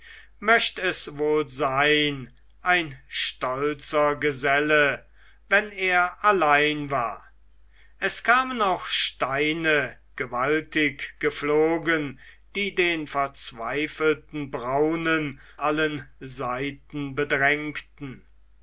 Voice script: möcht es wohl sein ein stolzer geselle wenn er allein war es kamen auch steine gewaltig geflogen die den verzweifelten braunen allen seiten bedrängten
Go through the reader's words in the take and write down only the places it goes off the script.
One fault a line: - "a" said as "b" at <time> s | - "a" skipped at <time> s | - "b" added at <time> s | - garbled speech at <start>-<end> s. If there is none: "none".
none